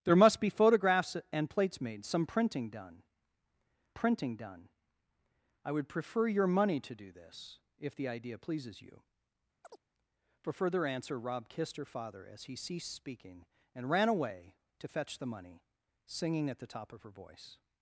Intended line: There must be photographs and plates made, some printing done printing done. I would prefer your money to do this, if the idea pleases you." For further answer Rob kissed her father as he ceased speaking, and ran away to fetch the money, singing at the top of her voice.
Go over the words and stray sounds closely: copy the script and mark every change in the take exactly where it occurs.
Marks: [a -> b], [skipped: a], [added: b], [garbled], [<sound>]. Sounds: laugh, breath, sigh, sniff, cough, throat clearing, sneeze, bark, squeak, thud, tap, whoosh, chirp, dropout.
There must be photographs and plates made, some printing done printing done. I would prefer your money to do this, if the idea pleases you." [chirp] For further answer Rob kissed her father as he ceased speaking, and ran away to fetch the money, singing at the top of her voice.